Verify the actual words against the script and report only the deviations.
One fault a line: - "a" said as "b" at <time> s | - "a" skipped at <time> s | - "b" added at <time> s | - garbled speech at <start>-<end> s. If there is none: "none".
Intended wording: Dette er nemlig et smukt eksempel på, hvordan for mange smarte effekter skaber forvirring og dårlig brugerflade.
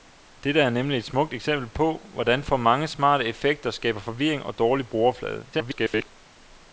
- garbled speech at 5.5-6.1 s